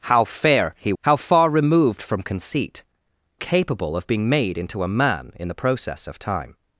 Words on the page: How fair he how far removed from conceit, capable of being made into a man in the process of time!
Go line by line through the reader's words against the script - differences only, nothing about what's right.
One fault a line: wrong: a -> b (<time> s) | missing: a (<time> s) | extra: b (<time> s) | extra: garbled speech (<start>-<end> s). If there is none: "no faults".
no faults